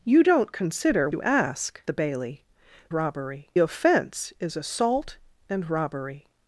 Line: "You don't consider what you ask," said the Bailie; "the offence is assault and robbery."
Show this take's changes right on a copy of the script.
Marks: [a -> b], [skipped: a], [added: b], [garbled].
"You don't consider [skipped: what] you ask," [skipped: said] the Bailie; ["the -> robbery] offence is assault and robbery."